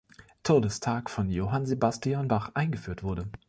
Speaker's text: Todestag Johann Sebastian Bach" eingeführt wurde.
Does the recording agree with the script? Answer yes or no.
no